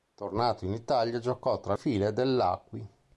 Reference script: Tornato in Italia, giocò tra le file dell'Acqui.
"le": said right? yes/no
no